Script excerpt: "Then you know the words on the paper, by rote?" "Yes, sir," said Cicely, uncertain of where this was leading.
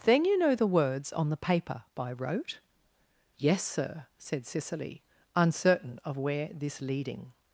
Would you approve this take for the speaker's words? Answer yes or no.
no